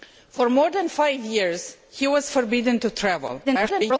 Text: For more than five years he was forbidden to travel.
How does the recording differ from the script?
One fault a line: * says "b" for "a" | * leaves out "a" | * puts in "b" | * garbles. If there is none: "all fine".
* garbles